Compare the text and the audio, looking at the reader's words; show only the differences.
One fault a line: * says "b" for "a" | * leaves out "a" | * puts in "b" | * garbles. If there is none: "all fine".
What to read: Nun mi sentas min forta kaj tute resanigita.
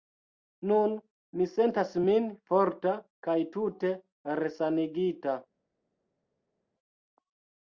all fine